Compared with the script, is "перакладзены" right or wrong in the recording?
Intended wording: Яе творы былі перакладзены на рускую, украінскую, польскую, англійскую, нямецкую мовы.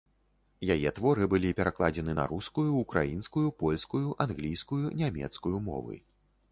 right